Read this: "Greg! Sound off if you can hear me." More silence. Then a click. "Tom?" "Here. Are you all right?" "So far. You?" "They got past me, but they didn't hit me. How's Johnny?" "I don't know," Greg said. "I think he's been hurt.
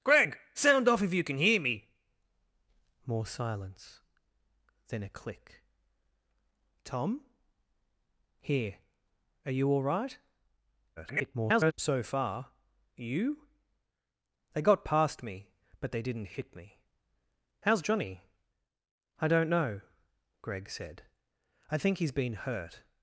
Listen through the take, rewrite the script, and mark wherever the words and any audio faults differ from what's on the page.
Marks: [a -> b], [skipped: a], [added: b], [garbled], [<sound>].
"Greg! Sound off if you can hear me." More silence. Then a click. "Tom?" "Here. Are you all right?" [garbled] "So far. You?" "They got past me, but they didn't hit me. How's Johnny?" "I don't know," Greg said. "I think he's been hurt.